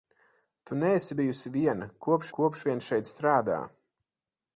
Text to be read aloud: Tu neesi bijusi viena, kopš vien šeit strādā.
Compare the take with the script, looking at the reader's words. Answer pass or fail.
fail